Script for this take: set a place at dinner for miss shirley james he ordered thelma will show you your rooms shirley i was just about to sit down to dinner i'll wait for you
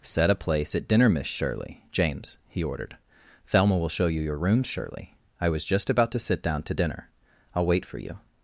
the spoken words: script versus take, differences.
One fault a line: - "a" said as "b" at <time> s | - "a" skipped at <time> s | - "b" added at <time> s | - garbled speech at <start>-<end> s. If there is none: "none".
- "for" skipped at 1.1 s